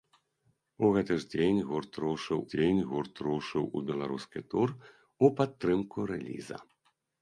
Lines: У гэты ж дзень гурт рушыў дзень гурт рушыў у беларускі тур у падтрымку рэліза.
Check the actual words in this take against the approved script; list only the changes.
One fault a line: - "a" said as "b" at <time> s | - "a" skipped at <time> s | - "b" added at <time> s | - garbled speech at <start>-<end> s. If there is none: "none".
none